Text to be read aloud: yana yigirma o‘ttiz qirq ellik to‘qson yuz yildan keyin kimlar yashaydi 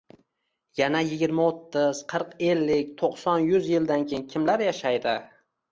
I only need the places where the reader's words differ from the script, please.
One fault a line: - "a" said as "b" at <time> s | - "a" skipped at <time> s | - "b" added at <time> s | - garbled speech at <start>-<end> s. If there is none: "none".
none